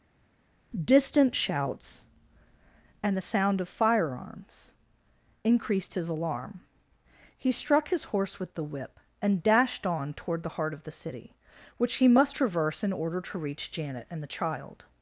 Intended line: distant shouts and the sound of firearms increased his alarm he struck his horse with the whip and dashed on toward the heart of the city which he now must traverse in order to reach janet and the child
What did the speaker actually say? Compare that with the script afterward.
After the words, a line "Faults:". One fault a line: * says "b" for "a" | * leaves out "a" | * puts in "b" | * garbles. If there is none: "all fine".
distant shouts and the sound of firearms increased his alarm he struck his horse with the whip and dashed on toward the heart of the city which he must traverse in order to reach janet and the child
Faults:
* leaves out "now"